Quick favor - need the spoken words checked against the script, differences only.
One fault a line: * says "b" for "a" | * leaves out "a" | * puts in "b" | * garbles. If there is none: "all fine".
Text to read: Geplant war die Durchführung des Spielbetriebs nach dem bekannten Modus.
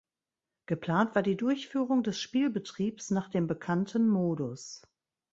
all fine